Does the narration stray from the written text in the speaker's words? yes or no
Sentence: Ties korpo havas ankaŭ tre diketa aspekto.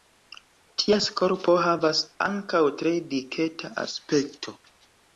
no